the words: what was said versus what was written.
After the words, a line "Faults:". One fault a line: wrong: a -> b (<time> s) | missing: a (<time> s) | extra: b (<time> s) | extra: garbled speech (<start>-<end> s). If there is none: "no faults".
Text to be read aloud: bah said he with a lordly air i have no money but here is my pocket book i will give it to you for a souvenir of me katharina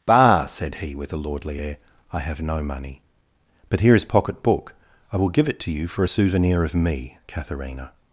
bah said he with a lordly air i have no money but here is pocket book i will give it to you for a souvenir of me katharina
Faults:
missing: my (4.0 s)